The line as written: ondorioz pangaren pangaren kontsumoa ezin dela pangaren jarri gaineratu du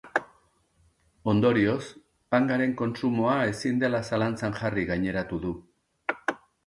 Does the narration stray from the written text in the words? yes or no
yes